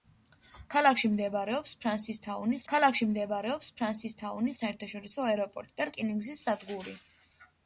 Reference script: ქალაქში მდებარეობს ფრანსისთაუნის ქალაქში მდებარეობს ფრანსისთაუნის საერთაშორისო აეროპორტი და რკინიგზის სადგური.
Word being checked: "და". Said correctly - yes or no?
yes